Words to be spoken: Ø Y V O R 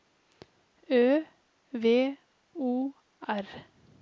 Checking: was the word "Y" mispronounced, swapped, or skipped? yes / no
yes